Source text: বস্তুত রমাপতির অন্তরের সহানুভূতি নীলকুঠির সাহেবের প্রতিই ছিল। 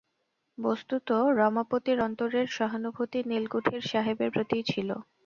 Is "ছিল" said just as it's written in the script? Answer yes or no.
yes